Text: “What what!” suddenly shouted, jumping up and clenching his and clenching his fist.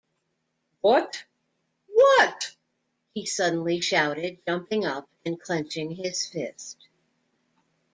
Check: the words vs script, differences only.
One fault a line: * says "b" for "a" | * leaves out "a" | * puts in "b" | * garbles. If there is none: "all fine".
* puts in "he"
* leaves out "and clenching his"